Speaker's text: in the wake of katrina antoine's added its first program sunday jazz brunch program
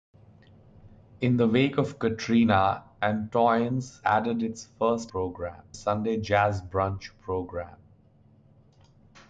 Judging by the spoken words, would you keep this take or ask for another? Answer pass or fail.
pass